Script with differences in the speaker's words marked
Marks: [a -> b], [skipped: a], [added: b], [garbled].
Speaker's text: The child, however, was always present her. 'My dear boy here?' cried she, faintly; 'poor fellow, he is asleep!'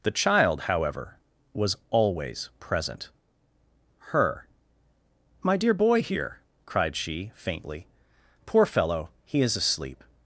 The child, however, was always present her. 'My dear boy here?' cried she, faintly; 'poor fellow, he is asleep!'